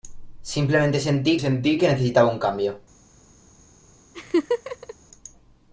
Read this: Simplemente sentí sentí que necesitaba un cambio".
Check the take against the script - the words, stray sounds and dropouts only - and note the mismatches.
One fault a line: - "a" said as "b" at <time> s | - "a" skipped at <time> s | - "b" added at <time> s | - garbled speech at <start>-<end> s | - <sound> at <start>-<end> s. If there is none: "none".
- laugh at 4.1-4.9 s